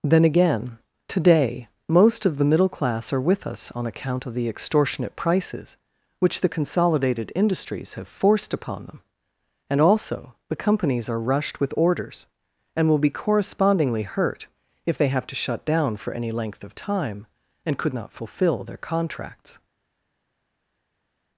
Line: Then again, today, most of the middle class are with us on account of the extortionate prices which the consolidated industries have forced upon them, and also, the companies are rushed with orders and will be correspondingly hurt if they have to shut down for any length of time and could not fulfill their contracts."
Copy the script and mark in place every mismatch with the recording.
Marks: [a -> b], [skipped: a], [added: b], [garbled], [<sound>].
Then again, today, most of the middle class are with us on account of the extortionate prices which the consolidated industries have forced upon them, and also, the companies are rushed with orders and will be correspondingly hurt if they have to shut down for any length of time and could not fulfill their contracts."